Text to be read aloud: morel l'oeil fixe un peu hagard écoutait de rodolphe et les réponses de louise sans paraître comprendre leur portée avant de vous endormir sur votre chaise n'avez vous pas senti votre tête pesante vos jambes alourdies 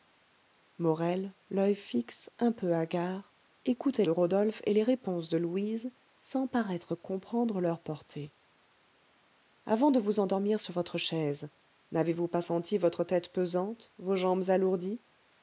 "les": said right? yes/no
yes